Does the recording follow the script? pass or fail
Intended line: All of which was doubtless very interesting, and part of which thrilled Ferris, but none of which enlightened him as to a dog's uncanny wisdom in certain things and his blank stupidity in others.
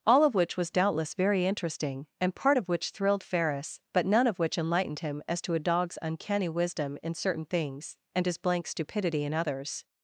pass